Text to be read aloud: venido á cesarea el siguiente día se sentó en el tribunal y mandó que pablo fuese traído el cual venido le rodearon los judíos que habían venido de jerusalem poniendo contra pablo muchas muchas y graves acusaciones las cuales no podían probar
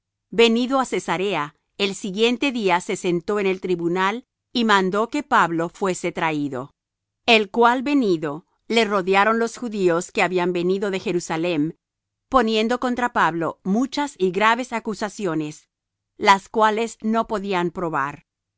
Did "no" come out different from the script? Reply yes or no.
no